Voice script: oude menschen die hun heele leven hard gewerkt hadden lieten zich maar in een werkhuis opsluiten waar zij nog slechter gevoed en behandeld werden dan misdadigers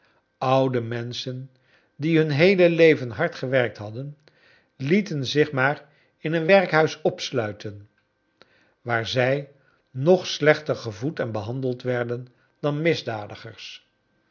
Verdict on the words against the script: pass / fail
pass